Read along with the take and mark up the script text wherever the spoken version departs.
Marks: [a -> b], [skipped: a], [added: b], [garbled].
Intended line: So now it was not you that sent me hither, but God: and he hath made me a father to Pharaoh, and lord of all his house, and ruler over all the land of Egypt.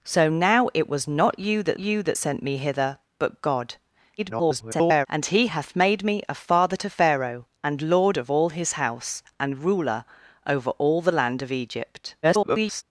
So now it was not you that [added: you that] sent me hither, but God: [garbled] and he hath made me a father to Pharaoh, and lord of all his house, and ruler over all the land of Egypt. [garbled]